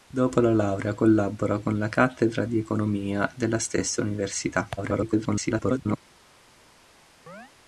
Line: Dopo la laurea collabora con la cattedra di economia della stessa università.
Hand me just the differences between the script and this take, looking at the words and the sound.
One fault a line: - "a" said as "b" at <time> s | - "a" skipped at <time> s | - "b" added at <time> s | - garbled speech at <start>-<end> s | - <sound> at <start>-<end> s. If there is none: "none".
- garbled speech at 4.8-6.0 s
- chirp at 7.3-7.5 s